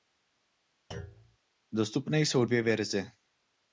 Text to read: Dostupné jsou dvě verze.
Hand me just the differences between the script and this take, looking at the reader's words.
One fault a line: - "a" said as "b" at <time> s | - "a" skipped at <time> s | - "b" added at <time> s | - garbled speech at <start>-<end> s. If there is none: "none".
none